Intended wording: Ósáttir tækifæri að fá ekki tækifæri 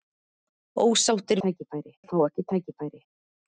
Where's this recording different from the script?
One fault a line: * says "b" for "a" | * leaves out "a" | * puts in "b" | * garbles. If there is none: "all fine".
all fine